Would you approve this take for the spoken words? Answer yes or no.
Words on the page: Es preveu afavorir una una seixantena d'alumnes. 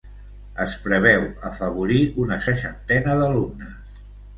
no